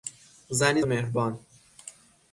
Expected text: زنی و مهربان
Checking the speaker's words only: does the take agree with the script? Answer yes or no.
yes